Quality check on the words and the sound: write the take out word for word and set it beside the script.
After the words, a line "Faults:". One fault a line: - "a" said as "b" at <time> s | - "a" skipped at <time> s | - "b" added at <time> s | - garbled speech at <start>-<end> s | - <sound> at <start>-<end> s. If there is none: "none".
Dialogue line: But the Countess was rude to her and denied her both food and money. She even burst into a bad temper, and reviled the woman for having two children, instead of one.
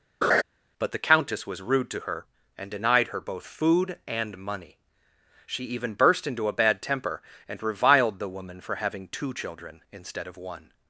But the Countess was rude to her and denied her both food and money. She even burst into a bad temper, and reviled the woman for having two children, instead of one.
Faults:
- laugh at 0.2-0.4 s